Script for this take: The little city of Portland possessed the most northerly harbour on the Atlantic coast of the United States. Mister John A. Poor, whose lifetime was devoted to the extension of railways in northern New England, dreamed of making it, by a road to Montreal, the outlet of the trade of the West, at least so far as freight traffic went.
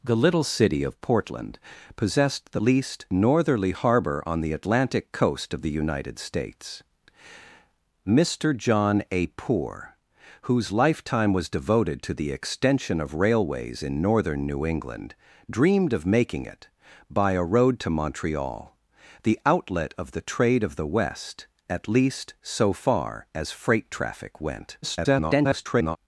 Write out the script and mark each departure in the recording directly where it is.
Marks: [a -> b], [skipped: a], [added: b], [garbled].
The little city of Portland possessed the [most -> least] northerly harbour on the Atlantic coast of the United States. Mister John A. Poor, whose lifetime was devoted to the extension of railways in northern New England, dreamed of making it, by a road to Montreal, the outlet of the trade of the West, at least so far as freight traffic went. [garbled]